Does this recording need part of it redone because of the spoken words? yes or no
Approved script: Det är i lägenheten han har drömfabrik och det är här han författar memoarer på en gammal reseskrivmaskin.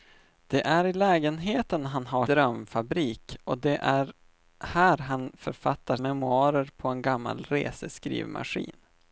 no